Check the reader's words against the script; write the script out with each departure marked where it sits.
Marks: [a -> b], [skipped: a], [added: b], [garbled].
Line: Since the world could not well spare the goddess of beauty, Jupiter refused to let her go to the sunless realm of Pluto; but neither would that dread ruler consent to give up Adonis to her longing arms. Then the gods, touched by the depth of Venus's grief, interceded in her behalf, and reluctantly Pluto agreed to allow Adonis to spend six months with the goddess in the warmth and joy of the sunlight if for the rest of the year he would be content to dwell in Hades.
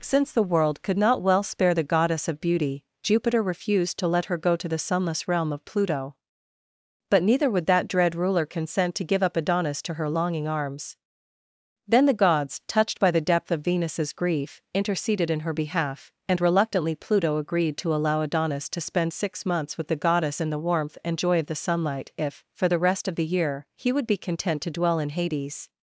Since the world could not well spare the goddess of beauty, Jupiter refused to let her go to the sunless realm of Pluto; but neither would that dread ruler consent to give up Adonis to her longing arms. Then the gods, touched by the depth of Venus's grief, interceded in her behalf, and reluctantly Pluto agreed to allow Adonis to spend six months with the goddess in the warmth and joy of the sunlight if for the rest of the year he would be content to dwell in Hades.